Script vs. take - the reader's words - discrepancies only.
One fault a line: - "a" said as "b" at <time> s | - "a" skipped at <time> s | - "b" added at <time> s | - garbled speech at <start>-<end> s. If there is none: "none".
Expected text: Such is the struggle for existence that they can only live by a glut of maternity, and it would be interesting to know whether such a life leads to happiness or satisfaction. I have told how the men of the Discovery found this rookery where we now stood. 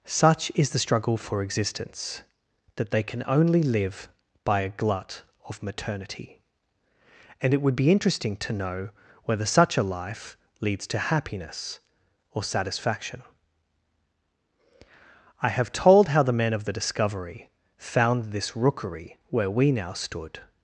none